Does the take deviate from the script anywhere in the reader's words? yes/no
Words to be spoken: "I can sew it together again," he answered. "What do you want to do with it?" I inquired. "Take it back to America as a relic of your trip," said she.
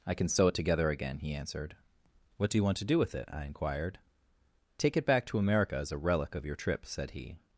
yes